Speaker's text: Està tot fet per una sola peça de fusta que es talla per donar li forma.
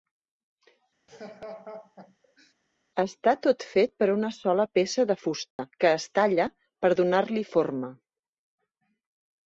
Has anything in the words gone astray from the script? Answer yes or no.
no